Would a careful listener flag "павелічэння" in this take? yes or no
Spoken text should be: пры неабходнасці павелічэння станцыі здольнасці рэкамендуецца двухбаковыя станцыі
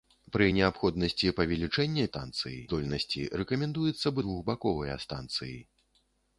no